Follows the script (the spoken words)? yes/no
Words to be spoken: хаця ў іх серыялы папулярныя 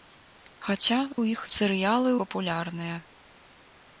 yes